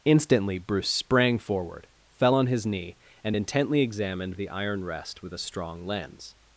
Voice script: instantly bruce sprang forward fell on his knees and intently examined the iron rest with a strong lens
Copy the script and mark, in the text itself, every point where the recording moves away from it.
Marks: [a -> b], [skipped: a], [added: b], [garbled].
instantly bruce sprang forward fell on his [knees -> knee] and intently examined the iron rest with a strong lens